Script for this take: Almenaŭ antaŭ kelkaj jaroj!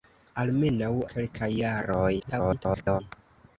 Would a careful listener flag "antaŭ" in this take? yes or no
yes